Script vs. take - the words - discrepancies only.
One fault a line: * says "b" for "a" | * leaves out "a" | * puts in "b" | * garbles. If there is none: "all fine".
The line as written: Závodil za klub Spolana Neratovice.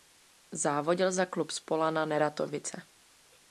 all fine